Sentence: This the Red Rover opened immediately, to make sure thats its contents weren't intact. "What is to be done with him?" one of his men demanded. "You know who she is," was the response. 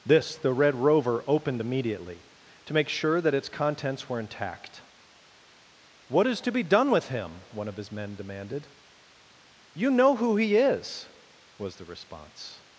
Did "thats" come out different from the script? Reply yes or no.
yes